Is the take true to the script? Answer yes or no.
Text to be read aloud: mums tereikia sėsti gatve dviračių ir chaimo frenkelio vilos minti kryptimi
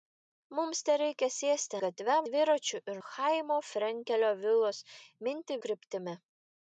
yes